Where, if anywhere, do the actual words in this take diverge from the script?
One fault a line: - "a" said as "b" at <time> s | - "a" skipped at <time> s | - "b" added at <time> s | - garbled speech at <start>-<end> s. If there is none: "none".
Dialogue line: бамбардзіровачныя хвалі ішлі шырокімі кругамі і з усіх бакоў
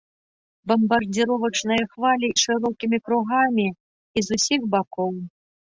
- "ішлі" skipped at 2.3 s